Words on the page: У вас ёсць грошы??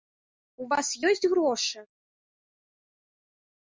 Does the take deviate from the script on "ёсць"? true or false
false